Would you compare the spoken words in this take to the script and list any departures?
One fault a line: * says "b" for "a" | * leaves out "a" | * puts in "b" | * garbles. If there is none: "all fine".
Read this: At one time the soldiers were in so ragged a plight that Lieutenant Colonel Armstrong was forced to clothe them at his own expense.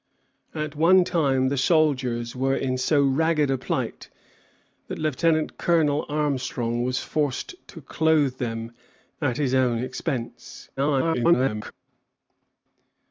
* garbles